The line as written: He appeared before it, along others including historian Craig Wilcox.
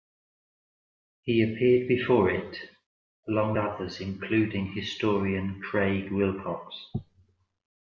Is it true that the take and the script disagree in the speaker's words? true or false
false